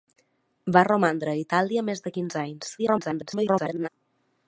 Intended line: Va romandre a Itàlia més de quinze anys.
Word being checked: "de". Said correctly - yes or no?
yes